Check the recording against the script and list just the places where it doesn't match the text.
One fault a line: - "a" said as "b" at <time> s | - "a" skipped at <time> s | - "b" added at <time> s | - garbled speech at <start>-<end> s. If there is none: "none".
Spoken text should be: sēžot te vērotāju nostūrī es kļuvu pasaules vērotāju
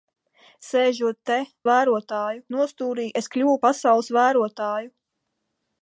none